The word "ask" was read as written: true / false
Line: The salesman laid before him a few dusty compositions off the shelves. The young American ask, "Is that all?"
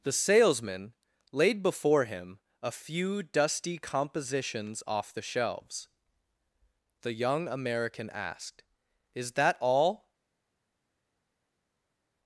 false